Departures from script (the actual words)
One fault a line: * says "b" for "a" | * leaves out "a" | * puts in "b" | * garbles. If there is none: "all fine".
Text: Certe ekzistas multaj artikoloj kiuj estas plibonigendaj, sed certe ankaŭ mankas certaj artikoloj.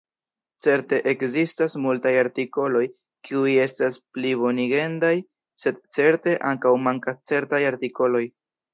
all fine